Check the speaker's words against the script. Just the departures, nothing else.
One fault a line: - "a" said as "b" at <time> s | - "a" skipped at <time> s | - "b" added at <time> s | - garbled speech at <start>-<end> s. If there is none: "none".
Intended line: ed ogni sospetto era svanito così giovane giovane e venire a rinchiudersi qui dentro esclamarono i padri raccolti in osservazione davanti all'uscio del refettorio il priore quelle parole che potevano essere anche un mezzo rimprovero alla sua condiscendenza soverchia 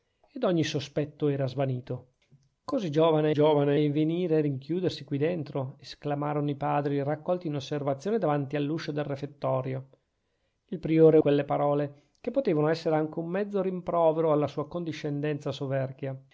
none